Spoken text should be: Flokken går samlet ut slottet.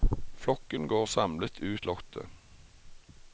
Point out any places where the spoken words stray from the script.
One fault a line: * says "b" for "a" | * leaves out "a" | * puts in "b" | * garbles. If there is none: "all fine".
all fine